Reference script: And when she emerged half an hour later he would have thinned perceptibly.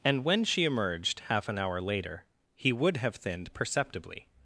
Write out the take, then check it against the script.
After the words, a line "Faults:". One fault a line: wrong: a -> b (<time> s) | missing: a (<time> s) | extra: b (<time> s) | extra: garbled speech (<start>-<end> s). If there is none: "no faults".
And when she emerged half an hour later he would have thinned perceptibly.
Faults:
no faults